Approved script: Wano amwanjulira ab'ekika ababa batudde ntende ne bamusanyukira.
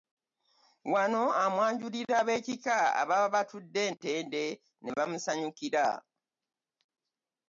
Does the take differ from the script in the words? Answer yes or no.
no